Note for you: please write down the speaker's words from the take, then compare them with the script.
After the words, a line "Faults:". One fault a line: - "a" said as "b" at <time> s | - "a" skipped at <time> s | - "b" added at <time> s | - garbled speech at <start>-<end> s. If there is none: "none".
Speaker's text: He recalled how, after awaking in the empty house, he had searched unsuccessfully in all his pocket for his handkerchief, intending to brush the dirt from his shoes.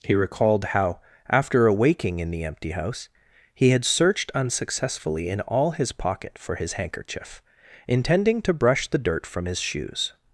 He recalled how, after awaking in the empty house, he had searched unsuccessfully in all his pocket for his handkerchief, intending to brush the dirt from his shoes.
Faults:
none